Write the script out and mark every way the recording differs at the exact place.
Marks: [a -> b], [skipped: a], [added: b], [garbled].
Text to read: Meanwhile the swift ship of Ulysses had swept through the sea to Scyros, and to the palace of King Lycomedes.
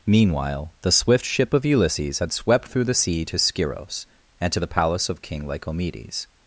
Meanwhile the swift ship of Ulysses had swept through the sea to Scyros, and to the palace of King Lycomedes.